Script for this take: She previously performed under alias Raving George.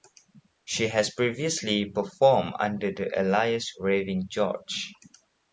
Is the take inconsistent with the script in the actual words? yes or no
yes